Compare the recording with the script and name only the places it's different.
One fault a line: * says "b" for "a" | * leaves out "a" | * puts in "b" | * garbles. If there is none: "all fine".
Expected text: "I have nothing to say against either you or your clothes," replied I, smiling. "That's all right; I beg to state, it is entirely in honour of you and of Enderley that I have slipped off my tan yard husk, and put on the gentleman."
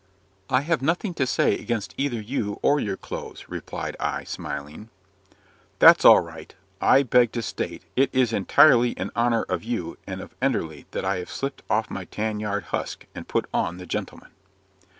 all fine